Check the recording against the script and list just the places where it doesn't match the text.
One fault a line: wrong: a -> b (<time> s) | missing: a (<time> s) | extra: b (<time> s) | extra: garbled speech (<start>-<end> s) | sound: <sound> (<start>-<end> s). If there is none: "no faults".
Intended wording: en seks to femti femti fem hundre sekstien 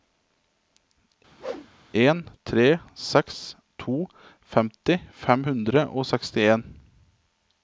sound: whoosh (1.4-1.7 s)
extra: tre (2.5 s)
missing: femti (5.0 s)
extra: og (5.9 s)